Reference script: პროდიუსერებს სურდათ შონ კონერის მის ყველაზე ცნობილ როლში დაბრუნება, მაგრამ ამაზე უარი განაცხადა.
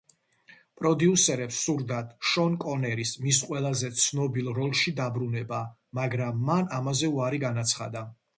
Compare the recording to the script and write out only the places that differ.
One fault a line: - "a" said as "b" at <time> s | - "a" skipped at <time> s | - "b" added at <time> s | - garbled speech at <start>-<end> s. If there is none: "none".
- "მან" added at 6.5 s